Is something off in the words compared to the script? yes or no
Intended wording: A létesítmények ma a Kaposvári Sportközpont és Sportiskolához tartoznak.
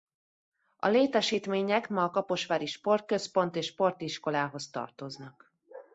no